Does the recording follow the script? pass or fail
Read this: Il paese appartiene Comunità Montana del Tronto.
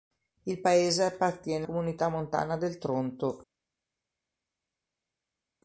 pass